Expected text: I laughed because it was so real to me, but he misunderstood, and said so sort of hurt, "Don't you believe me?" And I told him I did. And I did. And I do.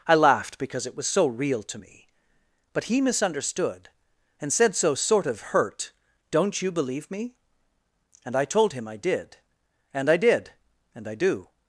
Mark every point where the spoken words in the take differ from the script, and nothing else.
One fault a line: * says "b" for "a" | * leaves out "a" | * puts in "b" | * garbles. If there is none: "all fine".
all fine